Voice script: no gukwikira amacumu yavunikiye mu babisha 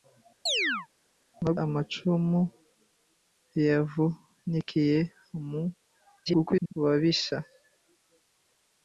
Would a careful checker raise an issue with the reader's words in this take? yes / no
yes